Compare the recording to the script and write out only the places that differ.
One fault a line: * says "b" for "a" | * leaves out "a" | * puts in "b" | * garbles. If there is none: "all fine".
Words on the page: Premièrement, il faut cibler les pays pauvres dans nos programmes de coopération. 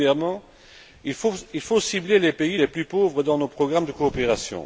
* puts in "les plus"